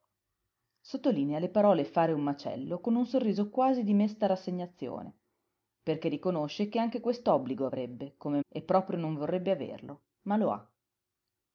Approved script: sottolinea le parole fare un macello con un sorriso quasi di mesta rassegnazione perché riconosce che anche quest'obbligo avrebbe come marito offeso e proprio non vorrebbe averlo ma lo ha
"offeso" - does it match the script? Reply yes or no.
no